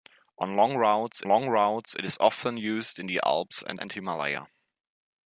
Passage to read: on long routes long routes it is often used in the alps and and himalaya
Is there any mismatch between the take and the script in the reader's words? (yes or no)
no